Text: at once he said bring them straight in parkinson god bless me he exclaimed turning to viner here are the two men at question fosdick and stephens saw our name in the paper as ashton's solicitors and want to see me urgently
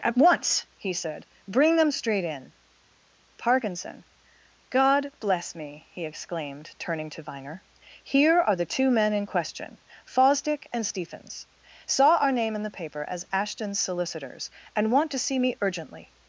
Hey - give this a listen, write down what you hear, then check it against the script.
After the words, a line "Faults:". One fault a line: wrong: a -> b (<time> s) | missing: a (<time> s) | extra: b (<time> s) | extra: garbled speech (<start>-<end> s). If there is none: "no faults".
at once he said bring them straight in parkinson god bless me he exclaimed turning to viner here are the two men in question fosdick and stephens saw our name in the paper as ashton's solicitors and want to see me urgently
Faults:
wrong: at -> in (9.1 s)